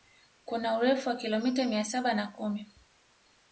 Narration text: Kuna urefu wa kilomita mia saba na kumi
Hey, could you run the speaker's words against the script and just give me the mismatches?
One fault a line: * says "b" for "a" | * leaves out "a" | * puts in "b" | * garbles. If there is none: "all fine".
all fine